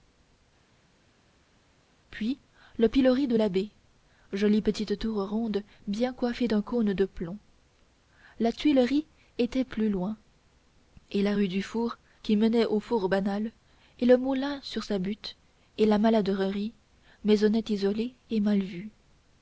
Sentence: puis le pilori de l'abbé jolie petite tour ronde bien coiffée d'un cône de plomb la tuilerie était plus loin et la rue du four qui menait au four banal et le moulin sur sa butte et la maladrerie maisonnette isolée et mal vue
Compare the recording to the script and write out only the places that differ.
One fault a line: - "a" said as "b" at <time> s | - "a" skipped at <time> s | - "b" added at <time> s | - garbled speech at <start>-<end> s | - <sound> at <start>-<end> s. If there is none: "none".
none